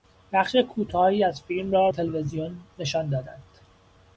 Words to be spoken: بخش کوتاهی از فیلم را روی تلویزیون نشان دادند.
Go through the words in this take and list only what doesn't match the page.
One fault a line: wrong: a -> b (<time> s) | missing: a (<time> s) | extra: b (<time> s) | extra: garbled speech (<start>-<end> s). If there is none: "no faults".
missing: روی (1.9 s)